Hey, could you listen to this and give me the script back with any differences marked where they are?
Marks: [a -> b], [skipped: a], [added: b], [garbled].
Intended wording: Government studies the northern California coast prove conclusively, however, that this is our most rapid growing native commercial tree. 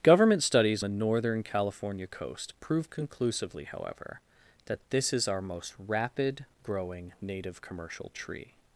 Government studies the northern California coast prove conclusively, however, that this is our most rapid growing native commercial tree.